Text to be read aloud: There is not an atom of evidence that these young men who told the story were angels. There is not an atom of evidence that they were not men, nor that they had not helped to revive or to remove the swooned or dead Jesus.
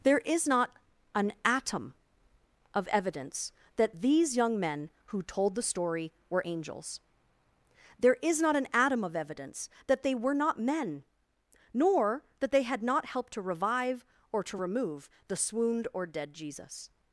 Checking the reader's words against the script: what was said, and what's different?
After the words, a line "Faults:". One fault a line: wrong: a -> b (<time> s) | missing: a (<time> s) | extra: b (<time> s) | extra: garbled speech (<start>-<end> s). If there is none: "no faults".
There is not an atom of evidence that these young men who told the story were angels. There is not an atom of evidence that they were not men, nor that they had not helped to revive or to remove the swooned or dead Jesus.
Faults:
no faults